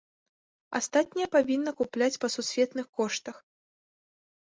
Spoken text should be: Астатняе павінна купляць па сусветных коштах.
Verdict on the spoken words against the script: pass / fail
pass